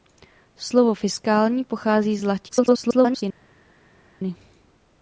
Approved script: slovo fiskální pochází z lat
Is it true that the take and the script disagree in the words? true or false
true